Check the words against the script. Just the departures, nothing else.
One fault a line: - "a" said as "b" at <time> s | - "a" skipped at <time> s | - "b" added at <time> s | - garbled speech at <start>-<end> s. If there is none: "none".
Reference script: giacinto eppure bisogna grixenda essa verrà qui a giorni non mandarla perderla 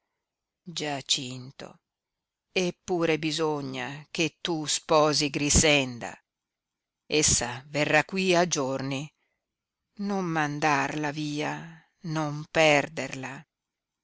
- "che tu sposi" added at 4.1 s
- "via non" added at 11.1 s